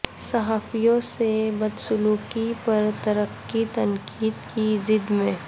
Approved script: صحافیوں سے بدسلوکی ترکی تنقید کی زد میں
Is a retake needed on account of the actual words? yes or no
yes